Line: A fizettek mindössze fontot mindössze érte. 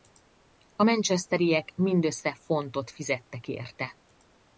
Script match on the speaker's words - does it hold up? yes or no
no